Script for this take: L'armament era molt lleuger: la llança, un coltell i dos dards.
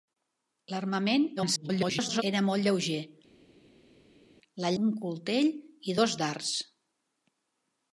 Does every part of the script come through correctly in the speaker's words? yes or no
no